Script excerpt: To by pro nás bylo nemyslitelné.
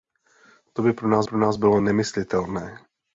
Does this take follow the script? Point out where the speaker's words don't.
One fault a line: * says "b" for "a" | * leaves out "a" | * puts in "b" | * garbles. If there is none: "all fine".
* puts in "pro nás"